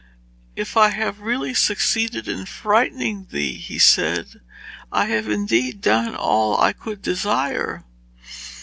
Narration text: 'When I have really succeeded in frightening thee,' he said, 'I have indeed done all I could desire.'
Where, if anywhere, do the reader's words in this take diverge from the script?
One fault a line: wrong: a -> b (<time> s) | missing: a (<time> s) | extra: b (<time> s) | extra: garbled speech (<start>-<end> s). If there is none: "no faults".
wrong: When -> If (0.6 s)